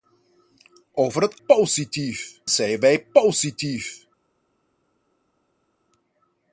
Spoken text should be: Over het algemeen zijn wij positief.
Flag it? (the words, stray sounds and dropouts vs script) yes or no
yes